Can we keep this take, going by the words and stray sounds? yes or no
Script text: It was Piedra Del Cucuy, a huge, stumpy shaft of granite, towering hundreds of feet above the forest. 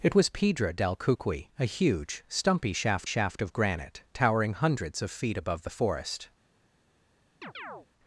no